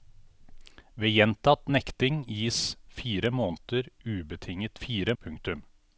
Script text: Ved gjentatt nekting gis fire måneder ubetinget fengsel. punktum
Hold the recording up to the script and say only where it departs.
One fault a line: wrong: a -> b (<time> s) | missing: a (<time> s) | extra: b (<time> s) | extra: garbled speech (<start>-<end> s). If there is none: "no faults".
wrong: fengsel -> fire (4.8 s)